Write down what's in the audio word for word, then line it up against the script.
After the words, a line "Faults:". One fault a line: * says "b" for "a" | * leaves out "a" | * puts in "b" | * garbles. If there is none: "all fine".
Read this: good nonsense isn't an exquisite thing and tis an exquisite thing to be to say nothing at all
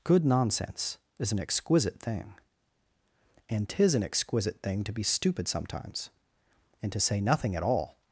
good nonsense is an exquisite thing and tis an exquisite thing to be stupid sometimes and to say nothing at all
Faults:
* says "is" for "isn't"
* puts in "stupid sometimes and"